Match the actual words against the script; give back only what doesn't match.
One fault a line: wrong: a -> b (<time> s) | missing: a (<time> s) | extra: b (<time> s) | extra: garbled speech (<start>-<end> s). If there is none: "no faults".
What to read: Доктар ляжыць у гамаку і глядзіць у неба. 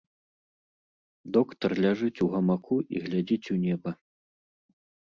no faults